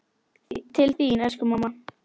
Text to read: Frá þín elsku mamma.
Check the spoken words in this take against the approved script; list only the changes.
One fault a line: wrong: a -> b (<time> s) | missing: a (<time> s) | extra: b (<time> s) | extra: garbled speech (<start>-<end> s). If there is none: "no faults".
wrong: Frá -> Til (0.8 s)